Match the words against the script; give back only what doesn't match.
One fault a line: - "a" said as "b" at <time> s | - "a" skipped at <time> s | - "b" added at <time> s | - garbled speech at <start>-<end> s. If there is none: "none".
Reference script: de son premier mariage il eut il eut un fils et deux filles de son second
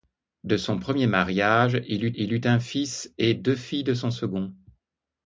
none